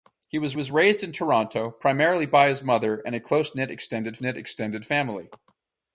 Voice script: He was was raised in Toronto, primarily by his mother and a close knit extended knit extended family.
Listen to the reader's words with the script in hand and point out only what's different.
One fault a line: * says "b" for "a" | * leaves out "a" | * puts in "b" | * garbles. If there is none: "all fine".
all fine